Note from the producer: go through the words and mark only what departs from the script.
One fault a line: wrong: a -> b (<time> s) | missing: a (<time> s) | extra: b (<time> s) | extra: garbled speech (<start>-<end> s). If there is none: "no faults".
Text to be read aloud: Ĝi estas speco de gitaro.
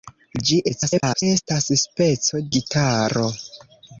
extra: garbled speech (0.7-1.2 s)
missing: de (2.4 s)